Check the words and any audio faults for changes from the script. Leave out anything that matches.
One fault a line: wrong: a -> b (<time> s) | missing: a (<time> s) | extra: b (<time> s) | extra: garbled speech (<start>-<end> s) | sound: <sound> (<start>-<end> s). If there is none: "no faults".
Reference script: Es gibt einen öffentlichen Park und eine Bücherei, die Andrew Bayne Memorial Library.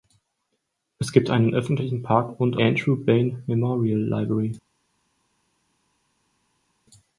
missing: eine Bücherei die (2.6 s)